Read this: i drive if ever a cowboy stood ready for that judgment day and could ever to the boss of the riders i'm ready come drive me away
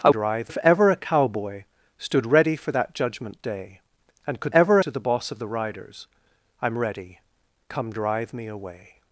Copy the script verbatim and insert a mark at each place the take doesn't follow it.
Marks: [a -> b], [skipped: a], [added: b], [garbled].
i drive if ever a cowboy stood ready for that judgment day and could ever to the boss of the riders i'm ready come drive me away